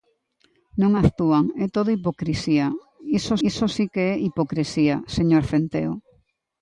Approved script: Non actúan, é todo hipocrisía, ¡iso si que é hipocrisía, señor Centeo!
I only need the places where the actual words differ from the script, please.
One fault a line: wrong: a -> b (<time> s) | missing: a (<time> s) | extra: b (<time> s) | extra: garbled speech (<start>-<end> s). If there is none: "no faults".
extra: iso (3.5 s)